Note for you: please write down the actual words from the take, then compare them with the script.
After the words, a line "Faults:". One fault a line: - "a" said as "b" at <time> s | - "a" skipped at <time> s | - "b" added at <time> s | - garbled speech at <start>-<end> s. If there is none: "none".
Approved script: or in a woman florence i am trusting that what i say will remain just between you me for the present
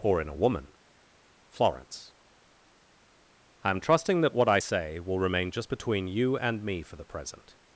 or in a woman florence i am trusting that what i say will remain just between you and me for the present
Faults:
- "and" added at 6.4 s